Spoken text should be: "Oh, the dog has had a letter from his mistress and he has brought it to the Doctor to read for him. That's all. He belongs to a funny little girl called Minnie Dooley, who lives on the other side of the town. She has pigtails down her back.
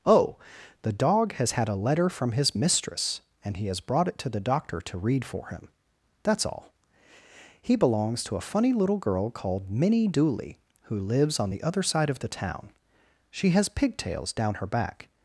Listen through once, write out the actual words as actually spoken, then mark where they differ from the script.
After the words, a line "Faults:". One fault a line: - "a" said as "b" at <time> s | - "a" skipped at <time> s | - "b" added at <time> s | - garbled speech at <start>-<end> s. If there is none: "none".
"Oh, the dog has had a letter from his mistress and he has brought it to the Doctor to read for him. That's all. He belongs to a funny little girl called Minnie Dooley, who lives on the other side of the town. She has pigtails down her back.
Faults:
none